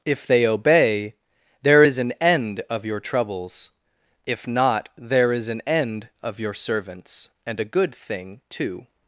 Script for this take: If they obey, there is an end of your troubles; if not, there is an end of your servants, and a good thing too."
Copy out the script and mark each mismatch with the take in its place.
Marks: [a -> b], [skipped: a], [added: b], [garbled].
If they obey, there is an end of your troubles; if not, there is an end of your servants, and a good thing too."